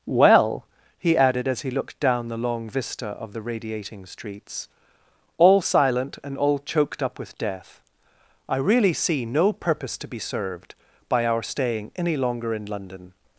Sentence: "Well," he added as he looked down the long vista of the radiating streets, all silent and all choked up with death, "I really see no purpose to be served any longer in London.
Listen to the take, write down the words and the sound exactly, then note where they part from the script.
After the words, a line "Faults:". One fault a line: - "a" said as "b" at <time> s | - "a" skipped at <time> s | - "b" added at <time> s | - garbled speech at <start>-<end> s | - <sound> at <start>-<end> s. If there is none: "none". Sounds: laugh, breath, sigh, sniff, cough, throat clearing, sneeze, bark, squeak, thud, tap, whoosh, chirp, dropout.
"Well," he added as he looked down the long vista of the radiating streets, all silent and all choked up with death, "I really see no purpose to be served by our staying any longer in London.
Faults:
- "by our staying" added at 11.1 s